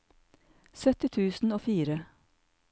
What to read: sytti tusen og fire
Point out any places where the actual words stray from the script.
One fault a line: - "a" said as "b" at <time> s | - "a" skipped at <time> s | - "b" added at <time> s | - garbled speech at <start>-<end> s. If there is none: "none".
none